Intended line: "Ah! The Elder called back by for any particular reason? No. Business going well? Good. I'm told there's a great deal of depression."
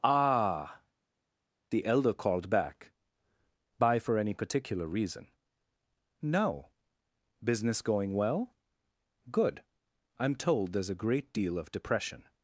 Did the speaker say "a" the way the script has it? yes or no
yes